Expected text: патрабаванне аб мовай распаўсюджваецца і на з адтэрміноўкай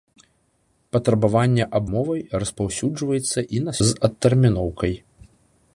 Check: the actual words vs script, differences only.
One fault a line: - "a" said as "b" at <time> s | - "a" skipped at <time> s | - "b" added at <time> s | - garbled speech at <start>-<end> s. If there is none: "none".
none